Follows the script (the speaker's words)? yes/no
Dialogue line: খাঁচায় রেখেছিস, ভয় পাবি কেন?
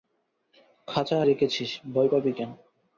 yes